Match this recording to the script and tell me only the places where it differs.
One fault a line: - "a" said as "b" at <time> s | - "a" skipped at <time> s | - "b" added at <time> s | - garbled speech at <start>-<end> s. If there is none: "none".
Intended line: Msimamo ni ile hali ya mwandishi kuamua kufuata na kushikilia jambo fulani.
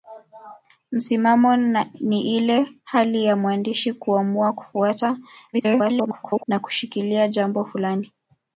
- garbled speech at 5.5-6.5 s